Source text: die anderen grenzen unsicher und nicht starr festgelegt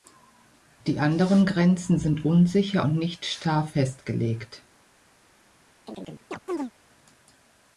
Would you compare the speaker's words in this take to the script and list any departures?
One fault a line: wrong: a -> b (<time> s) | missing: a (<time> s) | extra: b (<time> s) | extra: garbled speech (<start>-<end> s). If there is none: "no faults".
extra: sind (2.0 s)